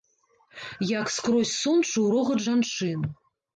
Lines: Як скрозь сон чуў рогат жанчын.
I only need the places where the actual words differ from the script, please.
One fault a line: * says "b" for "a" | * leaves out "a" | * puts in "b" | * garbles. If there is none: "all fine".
all fine